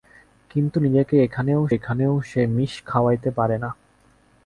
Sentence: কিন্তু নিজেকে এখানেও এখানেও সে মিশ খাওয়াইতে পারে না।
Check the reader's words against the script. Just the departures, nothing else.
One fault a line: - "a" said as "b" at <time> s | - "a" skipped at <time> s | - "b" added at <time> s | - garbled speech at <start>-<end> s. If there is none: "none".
none